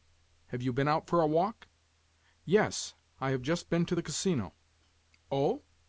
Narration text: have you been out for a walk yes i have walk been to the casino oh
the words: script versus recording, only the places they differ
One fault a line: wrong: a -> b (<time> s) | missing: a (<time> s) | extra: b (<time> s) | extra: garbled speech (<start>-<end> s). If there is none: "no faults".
wrong: walk -> just (3.4 s)